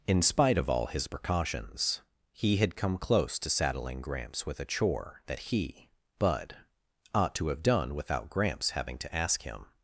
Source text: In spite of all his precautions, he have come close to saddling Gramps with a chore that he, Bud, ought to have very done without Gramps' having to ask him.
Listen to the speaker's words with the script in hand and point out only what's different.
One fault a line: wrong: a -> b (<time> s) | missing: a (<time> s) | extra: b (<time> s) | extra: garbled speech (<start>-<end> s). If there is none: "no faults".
wrong: have -> had (2.6 s)
missing: very (7.6 s)